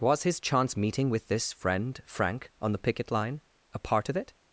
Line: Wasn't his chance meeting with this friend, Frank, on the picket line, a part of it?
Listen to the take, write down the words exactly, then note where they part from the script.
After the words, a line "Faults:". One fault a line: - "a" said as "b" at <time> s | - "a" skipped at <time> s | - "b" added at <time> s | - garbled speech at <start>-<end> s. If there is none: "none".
Was his chance meeting with this friend, Frank, on the picket line, a part of it?
Faults:
- "Wasn't" said as "Was" at 0.0 s